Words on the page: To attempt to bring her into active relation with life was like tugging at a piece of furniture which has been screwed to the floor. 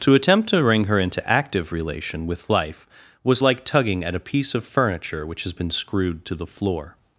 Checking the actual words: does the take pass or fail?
pass